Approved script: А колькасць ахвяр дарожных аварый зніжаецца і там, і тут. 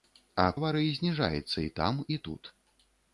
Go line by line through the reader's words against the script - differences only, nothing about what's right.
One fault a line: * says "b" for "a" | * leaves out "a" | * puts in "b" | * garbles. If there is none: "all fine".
* leaves out "колькасць ахвяр дарожных"